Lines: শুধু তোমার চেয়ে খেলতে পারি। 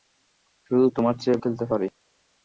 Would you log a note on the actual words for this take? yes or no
no